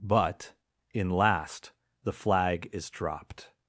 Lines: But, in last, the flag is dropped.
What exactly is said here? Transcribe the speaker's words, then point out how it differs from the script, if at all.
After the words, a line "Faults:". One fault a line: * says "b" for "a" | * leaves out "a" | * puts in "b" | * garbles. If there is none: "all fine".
But, in last, the flag is dropped.
Faults:
all fine